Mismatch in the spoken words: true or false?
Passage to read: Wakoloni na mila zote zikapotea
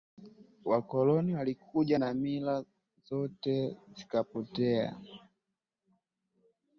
true